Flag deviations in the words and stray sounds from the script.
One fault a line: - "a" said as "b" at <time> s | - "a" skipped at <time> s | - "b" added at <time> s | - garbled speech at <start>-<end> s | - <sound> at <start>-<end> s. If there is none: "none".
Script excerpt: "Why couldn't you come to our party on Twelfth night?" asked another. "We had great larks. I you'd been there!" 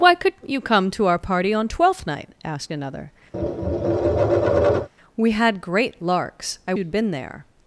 - tap at 3.3-4.9 s